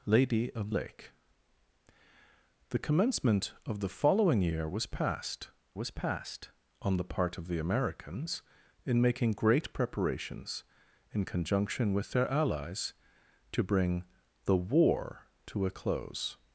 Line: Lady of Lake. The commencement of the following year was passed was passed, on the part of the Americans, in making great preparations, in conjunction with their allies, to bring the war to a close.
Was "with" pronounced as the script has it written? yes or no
yes